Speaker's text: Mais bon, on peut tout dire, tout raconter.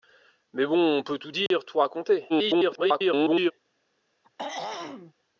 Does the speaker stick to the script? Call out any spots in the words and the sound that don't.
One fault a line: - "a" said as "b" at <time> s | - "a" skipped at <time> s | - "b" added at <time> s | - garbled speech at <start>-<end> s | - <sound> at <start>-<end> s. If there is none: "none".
- dropout at 1.5-1.5 s
- garbled speech at 2.3-3.5 s
- throat clearing at 4.2-5.1 s